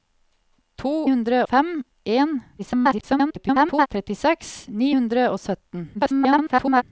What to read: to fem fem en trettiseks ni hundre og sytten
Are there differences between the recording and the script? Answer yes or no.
yes